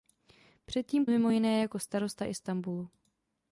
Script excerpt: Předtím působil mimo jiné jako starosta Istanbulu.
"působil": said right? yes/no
no